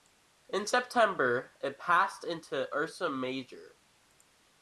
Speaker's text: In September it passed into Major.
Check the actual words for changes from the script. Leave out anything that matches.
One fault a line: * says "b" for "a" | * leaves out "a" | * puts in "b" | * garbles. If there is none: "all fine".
* puts in "Ursa"